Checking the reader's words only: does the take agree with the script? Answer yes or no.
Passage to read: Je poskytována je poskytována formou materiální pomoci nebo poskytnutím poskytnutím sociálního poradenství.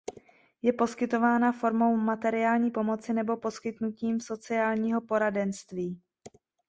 no